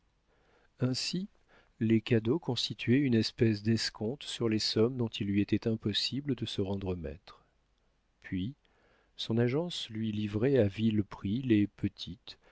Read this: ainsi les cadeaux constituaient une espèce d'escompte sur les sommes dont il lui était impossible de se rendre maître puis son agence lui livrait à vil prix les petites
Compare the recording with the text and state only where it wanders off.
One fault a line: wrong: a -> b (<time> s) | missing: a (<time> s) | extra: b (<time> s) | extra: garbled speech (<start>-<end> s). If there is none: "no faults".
no faults